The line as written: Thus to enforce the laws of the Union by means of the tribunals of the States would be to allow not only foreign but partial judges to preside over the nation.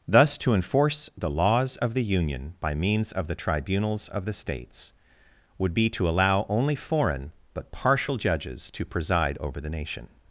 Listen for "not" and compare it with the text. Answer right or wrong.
wrong